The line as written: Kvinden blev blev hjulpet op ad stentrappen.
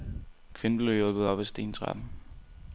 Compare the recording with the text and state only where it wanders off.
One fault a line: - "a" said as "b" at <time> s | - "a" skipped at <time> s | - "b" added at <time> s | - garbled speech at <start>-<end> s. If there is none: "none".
- "blev" skipped at 0.9 s